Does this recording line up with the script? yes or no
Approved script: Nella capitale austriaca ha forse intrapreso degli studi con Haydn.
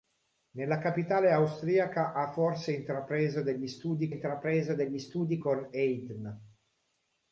no